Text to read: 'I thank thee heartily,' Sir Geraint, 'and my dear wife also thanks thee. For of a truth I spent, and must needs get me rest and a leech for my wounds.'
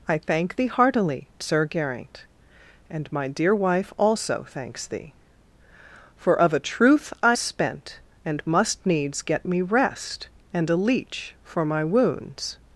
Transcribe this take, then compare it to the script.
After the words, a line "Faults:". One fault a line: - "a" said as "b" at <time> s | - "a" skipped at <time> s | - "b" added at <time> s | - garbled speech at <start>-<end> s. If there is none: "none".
'I thank thee heartily,' Sir Geraint, 'and my dear wife also thanks thee. For of a truth I spent, and must needs get me rest and a leech for my wounds.'
Faults:
none